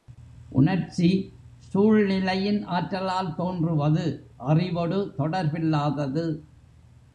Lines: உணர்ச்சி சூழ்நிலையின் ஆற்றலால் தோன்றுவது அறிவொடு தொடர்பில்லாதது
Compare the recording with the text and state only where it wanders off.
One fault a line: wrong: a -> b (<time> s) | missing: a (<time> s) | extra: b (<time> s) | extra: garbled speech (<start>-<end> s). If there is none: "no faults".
no faults